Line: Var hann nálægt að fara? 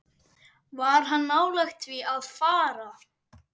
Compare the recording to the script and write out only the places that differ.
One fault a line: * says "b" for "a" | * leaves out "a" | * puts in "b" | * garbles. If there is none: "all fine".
* puts in "því"